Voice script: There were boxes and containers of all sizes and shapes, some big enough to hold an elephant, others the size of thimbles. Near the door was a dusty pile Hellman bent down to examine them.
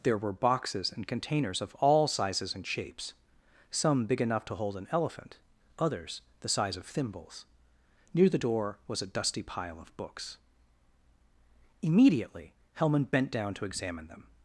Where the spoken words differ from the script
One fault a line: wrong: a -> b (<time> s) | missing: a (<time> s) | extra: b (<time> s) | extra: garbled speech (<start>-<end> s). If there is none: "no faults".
extra: of books Immediately (9.8 s)